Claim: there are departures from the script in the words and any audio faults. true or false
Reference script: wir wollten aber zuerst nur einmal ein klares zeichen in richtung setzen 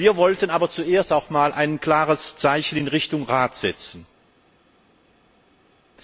true